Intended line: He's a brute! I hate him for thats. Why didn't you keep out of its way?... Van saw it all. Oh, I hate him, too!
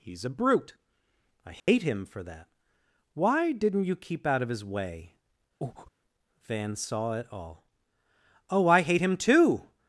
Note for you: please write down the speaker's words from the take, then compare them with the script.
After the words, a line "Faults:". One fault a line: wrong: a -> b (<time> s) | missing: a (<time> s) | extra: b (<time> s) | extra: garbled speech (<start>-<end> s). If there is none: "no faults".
He's a brute! I hate him for that. Why didn't you keep out of his way?... Van saw it all. Oh, I hate him, too!
Faults:
wrong: thats -> that (2.2 s)
wrong: its -> his (4.5 s)